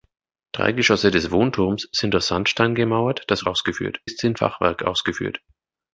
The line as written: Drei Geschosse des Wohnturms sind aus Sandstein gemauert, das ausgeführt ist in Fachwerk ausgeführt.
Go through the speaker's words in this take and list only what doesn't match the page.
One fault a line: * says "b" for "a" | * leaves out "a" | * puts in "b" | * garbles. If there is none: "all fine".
all fine